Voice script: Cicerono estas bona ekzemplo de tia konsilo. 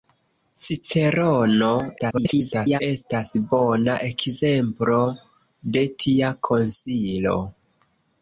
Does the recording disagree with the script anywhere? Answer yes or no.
yes